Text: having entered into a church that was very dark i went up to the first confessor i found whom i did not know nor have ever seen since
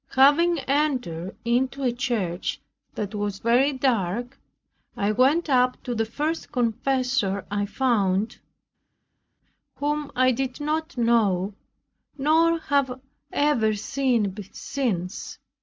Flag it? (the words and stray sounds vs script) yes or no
no